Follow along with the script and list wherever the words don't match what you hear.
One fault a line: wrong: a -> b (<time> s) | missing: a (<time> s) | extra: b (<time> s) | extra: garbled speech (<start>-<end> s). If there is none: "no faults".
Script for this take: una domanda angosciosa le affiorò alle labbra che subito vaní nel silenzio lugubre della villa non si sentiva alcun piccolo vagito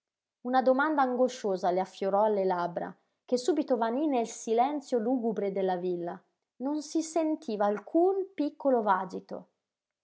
no faults